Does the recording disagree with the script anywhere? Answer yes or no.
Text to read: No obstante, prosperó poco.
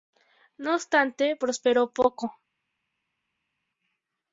no